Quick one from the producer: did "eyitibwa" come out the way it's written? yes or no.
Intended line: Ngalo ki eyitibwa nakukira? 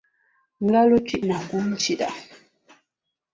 no